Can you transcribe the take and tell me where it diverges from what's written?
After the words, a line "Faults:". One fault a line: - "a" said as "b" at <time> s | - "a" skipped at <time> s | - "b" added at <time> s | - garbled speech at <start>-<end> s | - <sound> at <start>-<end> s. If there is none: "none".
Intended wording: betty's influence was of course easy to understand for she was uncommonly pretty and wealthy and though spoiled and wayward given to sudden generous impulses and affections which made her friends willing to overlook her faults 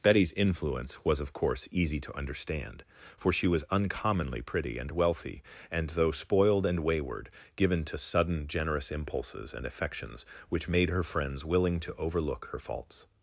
betty's influence was of course easy to understand for she was uncommonly pretty and wealthy and though spoiled and wayward given to sudden generous impulses and affections which made her friends willing to overlook her faults
Faults:
none